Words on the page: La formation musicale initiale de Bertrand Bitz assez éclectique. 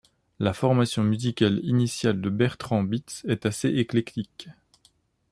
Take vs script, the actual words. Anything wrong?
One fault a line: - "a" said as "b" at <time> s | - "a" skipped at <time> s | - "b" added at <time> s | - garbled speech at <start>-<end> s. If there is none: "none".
- "est" added at 3.3 s